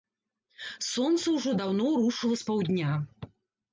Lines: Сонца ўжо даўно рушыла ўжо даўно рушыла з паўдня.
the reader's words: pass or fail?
fail